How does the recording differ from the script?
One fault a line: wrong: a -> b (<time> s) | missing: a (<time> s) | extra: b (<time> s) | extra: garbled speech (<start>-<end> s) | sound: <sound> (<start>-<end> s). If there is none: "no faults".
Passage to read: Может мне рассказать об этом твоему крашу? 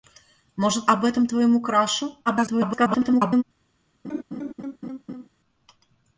missing: мне рассказать (0.9 s)
extra: garbled speech (2.3-3.4 s)
sound: laugh (4.0-5.3 s)